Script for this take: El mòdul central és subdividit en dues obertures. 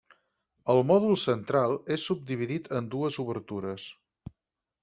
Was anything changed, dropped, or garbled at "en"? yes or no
no